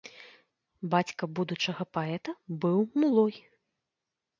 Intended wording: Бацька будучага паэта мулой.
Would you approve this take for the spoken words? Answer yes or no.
no